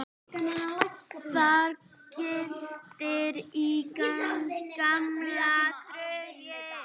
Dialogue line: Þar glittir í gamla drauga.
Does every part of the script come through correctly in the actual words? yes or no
yes